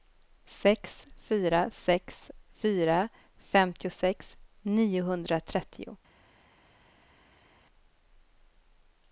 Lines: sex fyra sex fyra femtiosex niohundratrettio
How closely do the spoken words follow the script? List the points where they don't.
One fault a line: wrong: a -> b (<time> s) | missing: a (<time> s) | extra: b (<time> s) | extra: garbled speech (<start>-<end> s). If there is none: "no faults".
no faults